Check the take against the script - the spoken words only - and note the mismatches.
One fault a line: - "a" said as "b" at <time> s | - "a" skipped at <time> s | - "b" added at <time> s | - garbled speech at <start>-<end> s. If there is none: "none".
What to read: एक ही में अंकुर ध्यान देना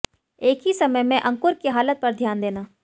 - "समय" added at 0.7 s
- "की हालत पर" added at 1.5 s